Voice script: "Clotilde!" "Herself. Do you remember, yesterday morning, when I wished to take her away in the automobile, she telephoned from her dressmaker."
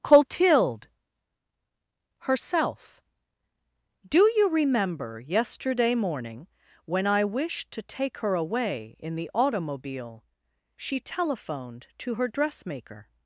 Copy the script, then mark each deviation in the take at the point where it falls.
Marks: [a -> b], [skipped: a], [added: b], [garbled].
"Clotilde!" "Herself. Do you remember, yesterday morning, when I wished to take her away in the automobile, she telephoned [from -> to] her dressmaker."